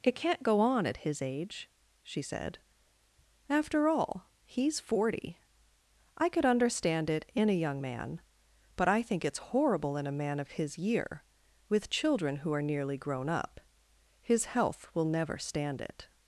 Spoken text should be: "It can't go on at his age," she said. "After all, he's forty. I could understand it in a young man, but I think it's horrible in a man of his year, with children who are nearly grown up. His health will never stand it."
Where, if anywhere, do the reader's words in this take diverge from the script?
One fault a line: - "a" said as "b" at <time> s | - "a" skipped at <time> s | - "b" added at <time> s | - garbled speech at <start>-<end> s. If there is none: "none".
none